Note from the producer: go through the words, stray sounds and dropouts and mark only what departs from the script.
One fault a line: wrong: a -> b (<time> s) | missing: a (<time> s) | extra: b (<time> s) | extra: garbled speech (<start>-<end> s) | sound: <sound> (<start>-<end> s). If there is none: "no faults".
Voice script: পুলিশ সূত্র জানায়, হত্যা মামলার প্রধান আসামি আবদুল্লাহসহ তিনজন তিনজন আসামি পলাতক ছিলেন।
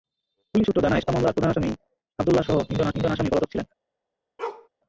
sound: bark (4.4-4.7 s)